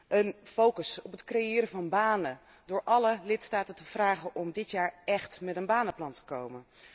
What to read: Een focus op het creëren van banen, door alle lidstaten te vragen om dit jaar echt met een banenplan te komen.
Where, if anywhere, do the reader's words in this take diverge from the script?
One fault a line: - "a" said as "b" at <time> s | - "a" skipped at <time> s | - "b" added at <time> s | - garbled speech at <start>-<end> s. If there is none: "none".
none